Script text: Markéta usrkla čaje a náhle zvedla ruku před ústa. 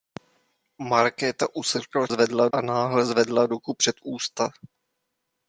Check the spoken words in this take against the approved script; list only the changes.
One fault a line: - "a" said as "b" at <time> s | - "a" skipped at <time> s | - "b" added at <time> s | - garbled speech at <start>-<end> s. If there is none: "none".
- "čaje" said as "zvedla" at 2.1 s